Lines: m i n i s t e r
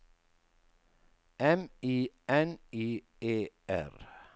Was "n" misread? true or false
false